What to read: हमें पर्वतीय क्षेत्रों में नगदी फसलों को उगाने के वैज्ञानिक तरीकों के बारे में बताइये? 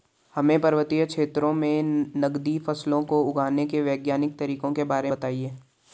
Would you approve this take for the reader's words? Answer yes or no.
no